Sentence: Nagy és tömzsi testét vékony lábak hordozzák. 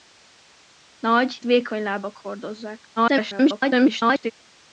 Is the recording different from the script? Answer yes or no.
yes